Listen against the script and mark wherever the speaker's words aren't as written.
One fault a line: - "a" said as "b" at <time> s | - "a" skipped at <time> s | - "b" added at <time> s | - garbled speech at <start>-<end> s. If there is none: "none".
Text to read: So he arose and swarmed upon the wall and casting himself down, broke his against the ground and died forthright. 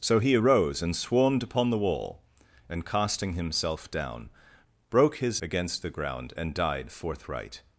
none